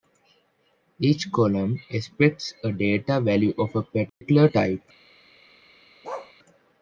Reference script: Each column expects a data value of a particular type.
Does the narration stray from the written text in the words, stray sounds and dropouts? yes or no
yes